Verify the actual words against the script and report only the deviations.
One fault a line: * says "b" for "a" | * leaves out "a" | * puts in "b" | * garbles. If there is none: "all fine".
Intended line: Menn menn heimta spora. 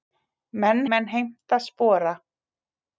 all fine